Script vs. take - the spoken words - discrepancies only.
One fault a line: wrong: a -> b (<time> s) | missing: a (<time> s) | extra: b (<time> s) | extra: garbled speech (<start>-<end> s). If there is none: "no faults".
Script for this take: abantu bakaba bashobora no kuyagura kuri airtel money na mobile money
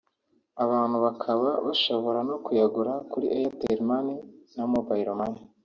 no faults